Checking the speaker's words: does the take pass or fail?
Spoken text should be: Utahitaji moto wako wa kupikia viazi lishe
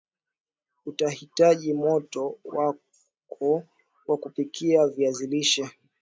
pass